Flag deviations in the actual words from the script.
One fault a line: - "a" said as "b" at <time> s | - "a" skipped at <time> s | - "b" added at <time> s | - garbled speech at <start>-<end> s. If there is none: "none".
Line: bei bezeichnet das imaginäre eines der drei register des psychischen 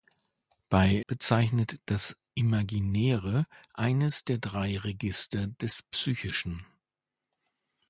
none